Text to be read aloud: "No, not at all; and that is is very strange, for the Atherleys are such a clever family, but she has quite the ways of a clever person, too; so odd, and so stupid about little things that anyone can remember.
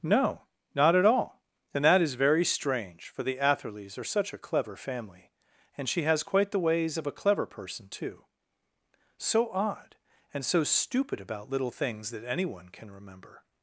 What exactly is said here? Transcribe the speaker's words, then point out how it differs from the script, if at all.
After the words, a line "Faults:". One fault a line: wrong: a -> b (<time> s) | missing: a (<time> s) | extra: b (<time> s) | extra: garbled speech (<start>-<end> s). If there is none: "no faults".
"No, not at all; and that is very strange, for the Atherleys are such a clever family, and she has quite the ways of a clever person, too; so odd, and so stupid about little things that anyone can remember.
Faults:
missing: is (2.1 s)
wrong: but -> and (5.8 s)